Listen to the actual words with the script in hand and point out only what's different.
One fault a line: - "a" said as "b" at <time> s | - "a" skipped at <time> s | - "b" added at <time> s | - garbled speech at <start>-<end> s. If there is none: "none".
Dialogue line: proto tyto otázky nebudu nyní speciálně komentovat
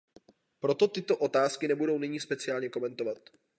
none